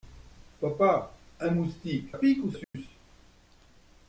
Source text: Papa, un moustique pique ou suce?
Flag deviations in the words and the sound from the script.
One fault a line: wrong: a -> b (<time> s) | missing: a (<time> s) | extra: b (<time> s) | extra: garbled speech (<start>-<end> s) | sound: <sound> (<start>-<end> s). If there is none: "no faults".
sound: dropout (2.6-2.7 s)